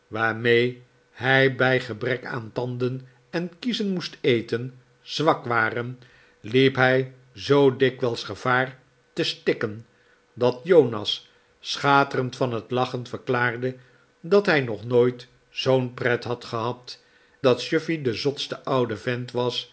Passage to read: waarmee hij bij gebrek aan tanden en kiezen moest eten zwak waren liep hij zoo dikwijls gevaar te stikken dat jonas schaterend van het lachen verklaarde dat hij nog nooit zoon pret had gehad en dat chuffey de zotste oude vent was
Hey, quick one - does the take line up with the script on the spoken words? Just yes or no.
no